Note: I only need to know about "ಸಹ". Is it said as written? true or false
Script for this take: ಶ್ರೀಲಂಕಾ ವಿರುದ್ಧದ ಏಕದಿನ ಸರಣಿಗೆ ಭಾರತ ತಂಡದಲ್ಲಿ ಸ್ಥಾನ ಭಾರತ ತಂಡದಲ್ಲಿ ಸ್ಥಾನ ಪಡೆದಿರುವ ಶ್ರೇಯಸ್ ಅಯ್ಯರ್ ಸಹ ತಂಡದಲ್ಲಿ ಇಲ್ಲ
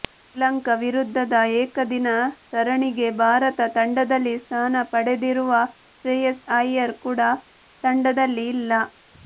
false